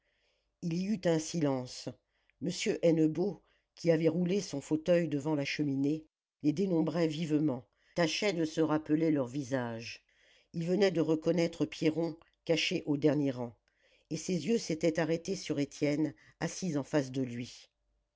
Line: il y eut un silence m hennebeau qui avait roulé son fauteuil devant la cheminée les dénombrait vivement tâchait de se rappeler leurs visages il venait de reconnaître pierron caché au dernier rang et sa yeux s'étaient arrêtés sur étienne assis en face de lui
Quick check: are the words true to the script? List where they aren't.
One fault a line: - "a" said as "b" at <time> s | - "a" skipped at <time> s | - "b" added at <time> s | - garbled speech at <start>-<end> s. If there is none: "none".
- "sa" said as "ses" at 14.2 s